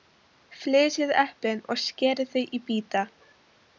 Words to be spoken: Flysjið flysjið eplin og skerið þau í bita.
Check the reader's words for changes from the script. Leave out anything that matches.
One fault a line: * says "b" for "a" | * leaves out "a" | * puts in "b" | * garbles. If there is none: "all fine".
* leaves out "flysjið"